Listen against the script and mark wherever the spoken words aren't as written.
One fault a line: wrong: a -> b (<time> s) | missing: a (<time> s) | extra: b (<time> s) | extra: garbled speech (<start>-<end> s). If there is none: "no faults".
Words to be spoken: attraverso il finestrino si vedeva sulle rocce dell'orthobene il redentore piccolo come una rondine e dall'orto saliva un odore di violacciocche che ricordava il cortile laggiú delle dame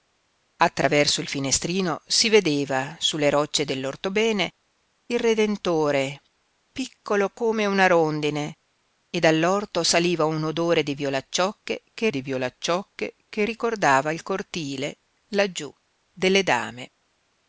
extra: di violacciocche che (12.1 s)